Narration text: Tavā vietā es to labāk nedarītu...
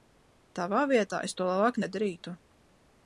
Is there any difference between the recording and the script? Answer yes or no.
no